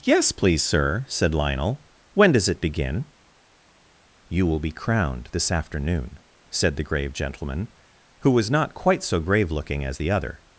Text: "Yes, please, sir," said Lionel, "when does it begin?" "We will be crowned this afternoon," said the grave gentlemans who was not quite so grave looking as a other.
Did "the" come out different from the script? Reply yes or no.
no